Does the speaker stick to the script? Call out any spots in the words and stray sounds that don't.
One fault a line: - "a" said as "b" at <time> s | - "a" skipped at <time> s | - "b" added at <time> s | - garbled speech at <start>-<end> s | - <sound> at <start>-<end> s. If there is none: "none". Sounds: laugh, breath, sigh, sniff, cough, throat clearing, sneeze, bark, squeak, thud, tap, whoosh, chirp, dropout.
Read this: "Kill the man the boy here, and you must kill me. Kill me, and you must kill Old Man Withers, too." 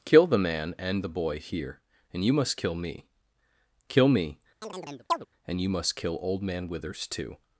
- "and" added at 0.8 s
- chirp at 4.6-5.3 s